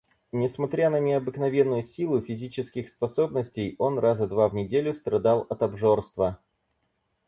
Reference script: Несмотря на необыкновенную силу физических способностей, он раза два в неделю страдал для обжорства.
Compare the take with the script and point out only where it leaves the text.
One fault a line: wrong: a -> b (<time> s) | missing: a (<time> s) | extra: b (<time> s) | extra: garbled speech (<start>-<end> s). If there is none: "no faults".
wrong: для -> от (5.5 s)